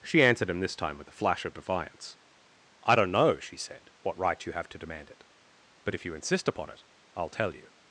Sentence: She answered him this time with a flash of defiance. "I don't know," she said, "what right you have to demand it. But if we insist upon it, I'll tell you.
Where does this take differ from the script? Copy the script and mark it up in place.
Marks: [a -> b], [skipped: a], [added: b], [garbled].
She answered him this time with a flash of defiance. "I don't know," she said, "what right you have to demand it. But if [we -> you] insist upon it, I'll tell you.